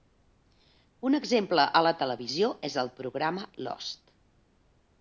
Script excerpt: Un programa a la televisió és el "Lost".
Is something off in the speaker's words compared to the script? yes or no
yes